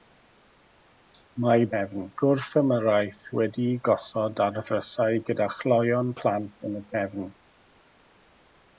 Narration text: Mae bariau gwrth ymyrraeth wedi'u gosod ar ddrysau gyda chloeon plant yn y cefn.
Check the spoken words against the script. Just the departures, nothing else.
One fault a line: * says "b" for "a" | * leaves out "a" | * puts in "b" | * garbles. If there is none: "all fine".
* says "cefn" for "bariau"